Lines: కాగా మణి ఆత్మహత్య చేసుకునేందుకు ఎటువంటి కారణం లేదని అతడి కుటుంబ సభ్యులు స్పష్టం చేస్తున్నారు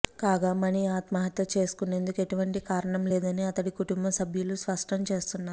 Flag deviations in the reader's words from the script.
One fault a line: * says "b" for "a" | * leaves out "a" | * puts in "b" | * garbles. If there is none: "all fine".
all fine